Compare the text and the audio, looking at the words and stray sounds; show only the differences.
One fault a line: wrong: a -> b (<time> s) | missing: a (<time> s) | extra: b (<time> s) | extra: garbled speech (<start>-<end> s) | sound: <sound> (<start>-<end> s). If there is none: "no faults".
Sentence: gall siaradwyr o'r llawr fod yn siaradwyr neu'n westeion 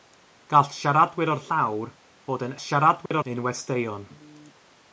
sound: dropout (3.1-3.1 s)